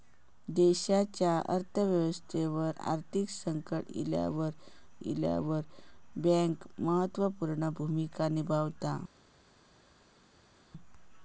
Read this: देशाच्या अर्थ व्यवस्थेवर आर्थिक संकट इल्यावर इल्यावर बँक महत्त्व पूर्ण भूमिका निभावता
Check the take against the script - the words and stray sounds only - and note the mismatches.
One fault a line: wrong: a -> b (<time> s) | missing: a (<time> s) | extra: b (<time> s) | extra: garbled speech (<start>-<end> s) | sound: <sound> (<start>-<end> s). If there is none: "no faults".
no faults